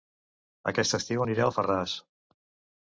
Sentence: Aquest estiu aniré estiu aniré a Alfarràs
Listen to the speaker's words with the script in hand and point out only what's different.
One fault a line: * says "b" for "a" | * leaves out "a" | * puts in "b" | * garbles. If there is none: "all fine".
* leaves out "estiu aniré"